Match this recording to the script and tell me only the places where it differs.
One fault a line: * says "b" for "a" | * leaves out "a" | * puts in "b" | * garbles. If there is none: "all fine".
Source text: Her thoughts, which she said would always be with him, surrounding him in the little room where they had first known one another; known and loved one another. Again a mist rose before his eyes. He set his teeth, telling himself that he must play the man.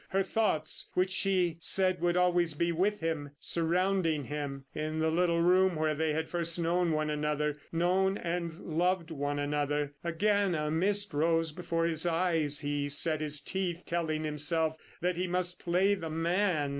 all fine